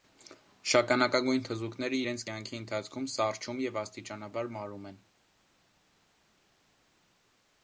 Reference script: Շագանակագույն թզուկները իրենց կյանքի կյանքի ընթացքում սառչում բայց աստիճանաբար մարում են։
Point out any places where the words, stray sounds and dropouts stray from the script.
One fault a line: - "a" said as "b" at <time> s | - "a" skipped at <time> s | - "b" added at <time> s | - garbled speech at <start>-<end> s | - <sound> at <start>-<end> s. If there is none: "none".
- "կյանքի" skipped at 2.6 s
- "բայց" said as "և" at 3.7 s